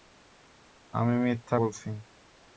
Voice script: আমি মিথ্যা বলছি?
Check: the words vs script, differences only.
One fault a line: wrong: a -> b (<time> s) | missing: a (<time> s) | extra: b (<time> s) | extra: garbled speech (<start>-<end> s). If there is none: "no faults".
no faults